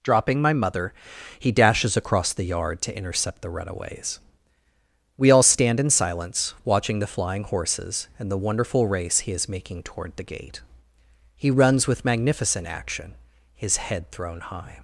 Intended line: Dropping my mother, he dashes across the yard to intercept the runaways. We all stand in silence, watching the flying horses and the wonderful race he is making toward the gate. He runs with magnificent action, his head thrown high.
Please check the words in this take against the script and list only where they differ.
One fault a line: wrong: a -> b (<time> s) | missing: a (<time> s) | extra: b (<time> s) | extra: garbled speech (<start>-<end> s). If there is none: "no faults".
no faults